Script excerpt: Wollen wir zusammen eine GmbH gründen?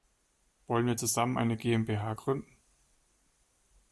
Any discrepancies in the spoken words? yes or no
no